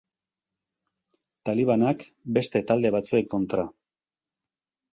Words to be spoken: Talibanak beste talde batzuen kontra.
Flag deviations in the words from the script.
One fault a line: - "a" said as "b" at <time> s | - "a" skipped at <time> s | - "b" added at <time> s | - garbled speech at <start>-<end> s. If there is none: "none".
none